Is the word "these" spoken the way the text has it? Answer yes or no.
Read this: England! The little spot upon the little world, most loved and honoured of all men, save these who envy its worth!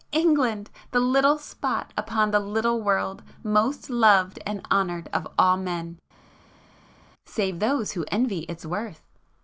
no